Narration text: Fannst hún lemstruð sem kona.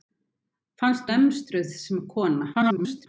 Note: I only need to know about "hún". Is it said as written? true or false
false